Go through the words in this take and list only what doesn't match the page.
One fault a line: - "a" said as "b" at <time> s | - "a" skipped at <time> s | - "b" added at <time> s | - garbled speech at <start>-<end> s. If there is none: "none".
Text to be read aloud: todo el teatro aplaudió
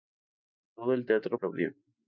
none